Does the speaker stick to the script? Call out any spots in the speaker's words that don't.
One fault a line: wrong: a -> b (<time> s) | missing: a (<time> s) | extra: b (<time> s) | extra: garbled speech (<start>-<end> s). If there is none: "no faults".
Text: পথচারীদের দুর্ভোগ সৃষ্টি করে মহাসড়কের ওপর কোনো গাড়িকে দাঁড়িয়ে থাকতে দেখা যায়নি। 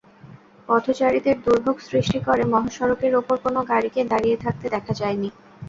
no faults